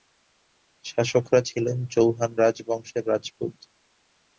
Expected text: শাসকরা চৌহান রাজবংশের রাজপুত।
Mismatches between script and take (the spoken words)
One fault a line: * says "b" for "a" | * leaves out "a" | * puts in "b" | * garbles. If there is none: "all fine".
* puts in "ছিলেন"